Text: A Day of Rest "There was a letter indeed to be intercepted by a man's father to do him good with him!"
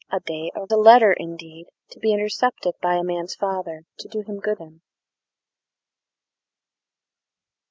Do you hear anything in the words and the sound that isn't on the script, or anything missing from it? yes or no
yes